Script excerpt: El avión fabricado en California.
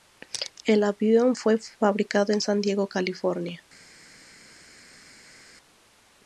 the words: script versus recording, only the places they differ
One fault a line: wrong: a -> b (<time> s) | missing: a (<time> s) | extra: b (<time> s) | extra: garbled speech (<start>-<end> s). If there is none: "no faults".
extra: fue (1.4 s)
extra: San Diego (2.4 s)